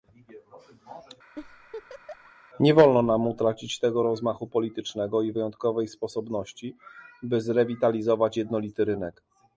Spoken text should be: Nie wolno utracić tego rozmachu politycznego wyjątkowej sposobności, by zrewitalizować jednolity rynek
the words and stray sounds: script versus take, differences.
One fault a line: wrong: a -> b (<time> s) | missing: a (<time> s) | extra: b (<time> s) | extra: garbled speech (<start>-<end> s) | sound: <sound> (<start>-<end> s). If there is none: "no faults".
sound: laugh (1.3-2.3 s)
extra: nam (3.0 s)
extra: i (5.2 s)